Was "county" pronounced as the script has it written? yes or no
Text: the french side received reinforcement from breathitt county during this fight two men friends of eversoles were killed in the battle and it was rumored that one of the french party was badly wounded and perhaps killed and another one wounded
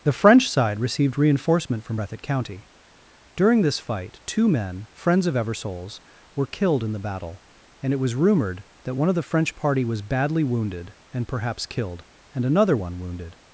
yes